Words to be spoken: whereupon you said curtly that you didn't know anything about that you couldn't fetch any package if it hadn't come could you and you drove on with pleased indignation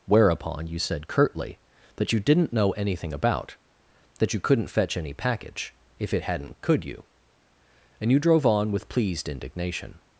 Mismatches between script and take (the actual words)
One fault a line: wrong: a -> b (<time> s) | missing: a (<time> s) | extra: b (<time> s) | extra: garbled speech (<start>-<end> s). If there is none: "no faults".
missing: come (6.5 s)